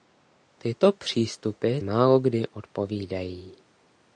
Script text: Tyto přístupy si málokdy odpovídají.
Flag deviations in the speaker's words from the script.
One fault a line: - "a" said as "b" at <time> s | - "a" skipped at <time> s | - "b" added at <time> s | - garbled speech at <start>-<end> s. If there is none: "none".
- "si" skipped at 1.8 s